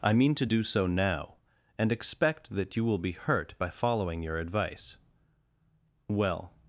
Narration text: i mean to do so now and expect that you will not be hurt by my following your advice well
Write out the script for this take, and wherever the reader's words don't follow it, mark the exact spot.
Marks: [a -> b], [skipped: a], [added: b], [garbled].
i mean to do so now and expect that you will [skipped: not] be hurt by [skipped: my] following your advice well